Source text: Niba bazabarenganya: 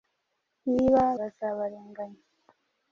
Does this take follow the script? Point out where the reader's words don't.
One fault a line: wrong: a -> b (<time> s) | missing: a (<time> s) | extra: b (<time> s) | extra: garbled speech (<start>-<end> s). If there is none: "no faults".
no faults